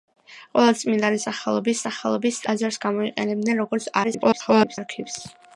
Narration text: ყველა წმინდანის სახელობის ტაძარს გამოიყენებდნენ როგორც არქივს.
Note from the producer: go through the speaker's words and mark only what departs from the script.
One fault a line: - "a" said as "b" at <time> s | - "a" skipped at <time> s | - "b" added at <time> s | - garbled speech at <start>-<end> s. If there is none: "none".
- "სახელობის" added at 1.9 s
- garbled speech at 4.0-4.8 s